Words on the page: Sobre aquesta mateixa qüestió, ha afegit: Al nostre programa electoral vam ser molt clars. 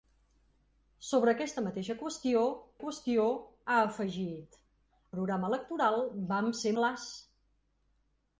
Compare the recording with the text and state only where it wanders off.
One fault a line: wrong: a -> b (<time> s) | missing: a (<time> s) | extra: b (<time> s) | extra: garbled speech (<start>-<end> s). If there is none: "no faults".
extra: qüestió (2.8 s)
missing: Al nostre (4.6 s)
missing: molt (6.8 s)